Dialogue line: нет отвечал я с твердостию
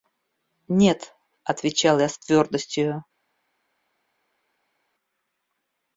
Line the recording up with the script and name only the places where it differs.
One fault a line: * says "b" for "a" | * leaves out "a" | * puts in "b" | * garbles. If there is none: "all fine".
all fine